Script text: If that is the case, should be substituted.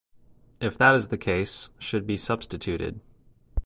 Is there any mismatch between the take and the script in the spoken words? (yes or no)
no